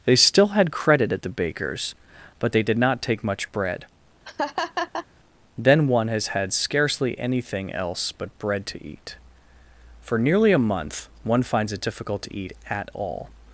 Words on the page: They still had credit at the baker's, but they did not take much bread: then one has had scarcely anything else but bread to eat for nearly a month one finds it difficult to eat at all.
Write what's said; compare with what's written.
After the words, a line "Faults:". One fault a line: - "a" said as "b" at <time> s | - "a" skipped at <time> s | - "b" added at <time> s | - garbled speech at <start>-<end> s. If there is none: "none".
They still had credit at the baker's, but they did not take much bread: then one has had scarcely anything else but bread to eat for nearly a month one finds it difficult to eat at all.
Faults:
none